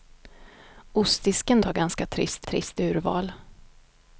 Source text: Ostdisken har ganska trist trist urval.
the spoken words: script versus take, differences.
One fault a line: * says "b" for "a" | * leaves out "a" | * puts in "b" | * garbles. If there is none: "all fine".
all fine